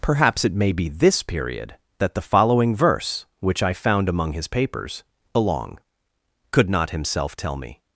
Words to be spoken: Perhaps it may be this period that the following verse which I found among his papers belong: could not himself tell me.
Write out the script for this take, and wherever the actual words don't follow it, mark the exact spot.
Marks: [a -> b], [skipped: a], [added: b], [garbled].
Perhaps it may be this period that the following verse which I found among his papers belong: could not himself tell me.